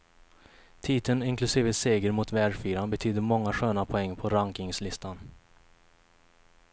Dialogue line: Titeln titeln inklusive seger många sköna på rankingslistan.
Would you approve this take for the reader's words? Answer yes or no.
no